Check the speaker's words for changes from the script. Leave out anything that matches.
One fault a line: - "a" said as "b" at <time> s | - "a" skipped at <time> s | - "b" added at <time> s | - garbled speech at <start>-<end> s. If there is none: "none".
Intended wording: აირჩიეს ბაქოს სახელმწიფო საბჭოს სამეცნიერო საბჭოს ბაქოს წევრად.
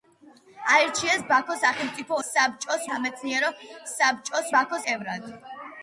none